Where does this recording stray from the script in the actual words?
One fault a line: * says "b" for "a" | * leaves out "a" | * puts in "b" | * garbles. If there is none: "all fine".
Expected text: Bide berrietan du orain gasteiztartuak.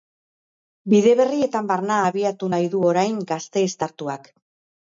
* puts in "barna abiatu nahi"